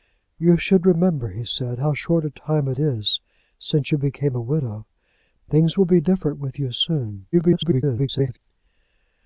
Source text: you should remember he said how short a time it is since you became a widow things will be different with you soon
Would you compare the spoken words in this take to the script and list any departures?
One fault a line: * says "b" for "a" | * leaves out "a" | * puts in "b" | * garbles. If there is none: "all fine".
* garbles